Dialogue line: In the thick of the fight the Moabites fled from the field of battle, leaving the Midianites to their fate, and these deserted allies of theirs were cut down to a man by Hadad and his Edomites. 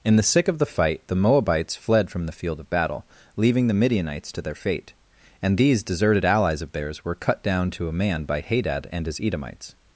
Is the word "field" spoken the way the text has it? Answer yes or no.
yes